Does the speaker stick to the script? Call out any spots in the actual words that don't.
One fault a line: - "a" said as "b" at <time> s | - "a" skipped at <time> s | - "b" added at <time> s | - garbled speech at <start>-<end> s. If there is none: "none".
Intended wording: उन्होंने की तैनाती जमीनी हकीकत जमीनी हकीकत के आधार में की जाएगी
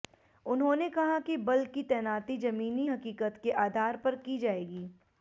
- "कहा कि बल" added at 0.9 s
- "जमीनी हकीकत" skipped at 3.4 s
- "में" said as "पर" at 4.0 s